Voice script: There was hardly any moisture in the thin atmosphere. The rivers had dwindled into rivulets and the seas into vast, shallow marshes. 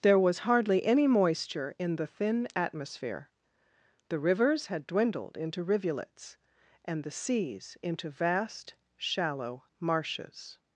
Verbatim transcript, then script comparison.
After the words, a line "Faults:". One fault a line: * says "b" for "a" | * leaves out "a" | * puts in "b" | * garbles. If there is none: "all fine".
There was hardly any moisture in the thin atmosphere. The rivers had dwindled into rivulets and the seas into vast, shallow marshes.
Faults:
all fine